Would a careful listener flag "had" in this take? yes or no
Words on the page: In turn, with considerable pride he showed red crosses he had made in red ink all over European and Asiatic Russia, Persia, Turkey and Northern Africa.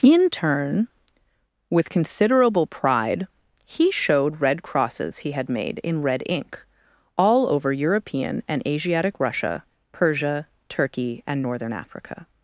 no